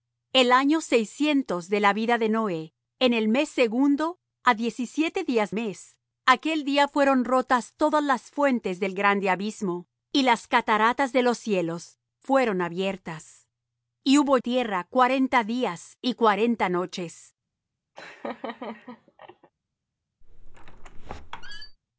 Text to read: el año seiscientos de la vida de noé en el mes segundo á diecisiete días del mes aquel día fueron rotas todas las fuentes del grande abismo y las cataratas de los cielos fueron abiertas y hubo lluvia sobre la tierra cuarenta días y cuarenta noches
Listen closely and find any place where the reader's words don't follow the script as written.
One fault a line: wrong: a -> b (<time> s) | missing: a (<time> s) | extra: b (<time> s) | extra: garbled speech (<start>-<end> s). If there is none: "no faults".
missing: del (5.5 s)
missing: lluvia sobre la (14.4 s)